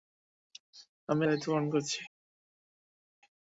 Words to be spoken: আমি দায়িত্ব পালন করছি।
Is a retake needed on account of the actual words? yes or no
no